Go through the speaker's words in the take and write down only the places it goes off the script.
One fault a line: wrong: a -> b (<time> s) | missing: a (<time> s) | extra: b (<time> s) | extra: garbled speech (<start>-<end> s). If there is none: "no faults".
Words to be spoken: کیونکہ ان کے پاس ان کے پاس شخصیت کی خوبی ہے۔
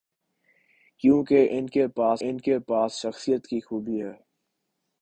no faults